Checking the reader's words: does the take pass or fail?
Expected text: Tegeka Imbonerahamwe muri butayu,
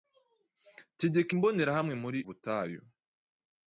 pass